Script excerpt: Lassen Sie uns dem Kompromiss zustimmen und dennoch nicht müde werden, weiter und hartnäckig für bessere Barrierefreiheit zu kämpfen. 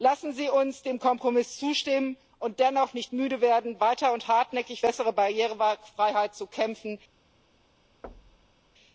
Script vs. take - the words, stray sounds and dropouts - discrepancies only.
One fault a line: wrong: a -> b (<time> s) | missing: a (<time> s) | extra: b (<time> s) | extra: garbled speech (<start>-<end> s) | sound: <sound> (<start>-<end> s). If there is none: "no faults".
missing: für (4.8 s)
sound: thud (8.0-8.6 s)